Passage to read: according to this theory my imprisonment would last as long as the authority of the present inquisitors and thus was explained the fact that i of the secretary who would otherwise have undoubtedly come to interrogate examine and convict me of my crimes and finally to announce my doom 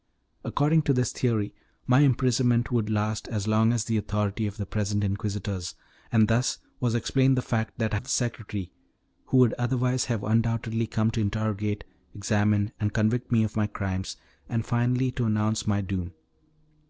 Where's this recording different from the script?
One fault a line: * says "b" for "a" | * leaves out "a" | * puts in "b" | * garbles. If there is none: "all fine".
all fine